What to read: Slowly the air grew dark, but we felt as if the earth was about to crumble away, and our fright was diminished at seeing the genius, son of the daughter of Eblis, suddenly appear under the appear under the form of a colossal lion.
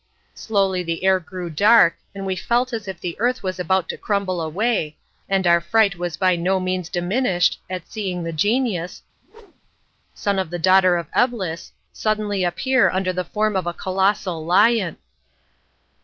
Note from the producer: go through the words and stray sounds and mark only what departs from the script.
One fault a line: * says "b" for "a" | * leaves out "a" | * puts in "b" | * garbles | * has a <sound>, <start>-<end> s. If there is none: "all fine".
* says "and" for "but"
* puts in "by no means"
* has a whoosh, 9.2-9.9 s
* leaves out "appear under the"